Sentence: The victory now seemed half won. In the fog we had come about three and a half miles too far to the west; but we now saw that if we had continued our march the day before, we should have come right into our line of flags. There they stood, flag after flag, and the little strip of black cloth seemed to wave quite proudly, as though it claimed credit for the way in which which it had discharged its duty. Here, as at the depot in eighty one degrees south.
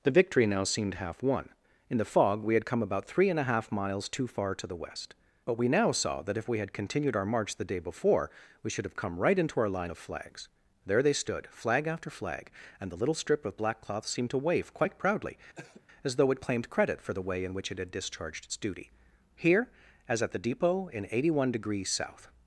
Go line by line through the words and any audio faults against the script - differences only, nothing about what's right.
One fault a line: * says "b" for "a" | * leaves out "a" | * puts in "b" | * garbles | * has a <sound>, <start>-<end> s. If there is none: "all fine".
* has a cough, 15.6-15.9 s
* leaves out "which"